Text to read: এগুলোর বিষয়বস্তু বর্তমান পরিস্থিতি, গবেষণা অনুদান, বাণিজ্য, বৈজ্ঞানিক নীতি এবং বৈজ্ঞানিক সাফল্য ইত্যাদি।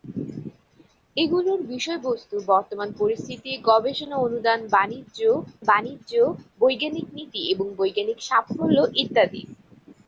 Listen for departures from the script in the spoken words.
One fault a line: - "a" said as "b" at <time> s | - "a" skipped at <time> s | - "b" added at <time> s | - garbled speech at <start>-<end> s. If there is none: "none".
- "বাণিজ্য" added at 5.6 s